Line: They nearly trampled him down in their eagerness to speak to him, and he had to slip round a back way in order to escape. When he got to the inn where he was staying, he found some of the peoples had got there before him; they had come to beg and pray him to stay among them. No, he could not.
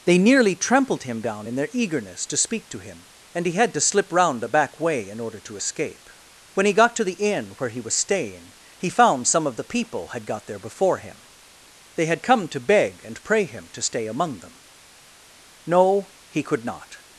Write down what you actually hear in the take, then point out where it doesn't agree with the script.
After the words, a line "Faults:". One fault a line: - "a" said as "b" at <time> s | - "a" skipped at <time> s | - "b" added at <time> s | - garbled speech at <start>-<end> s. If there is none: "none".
They nearly trampled him down in their eagerness to speak to him, and he had to slip round a back way in order to escape. When he got to the inn where he was staying, he found some of the people had got there before him; they had come to beg and pray him to stay among them. No, he could not.
Faults:
- "peoples" said as "people" at 9.6 s